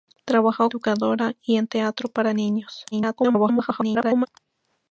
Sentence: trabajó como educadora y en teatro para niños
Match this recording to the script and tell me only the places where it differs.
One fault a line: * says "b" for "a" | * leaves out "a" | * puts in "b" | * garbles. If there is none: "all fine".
* leaves out "como"
* garbles